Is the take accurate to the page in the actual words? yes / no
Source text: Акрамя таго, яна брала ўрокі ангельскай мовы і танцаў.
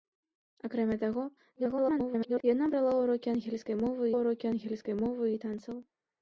no